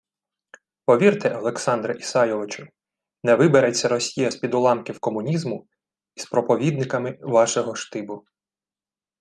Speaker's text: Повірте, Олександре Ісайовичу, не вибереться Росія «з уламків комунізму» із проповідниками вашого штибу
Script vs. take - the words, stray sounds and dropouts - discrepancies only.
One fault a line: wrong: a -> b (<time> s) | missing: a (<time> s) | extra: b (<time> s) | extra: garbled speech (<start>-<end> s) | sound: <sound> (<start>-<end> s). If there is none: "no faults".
extra: під (4.4 s)